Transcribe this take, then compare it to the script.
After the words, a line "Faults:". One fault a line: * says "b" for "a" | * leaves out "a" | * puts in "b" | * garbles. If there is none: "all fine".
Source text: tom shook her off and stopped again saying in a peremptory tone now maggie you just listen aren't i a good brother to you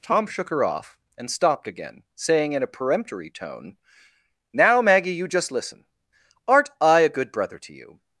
tom shook her off and stopped again saying in a peremptory tone now maggie you just listen aren't i a good brother to you
Faults:
all fine